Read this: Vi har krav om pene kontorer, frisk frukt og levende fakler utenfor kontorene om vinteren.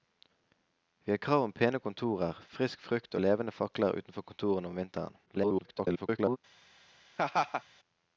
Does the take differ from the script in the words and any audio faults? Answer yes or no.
yes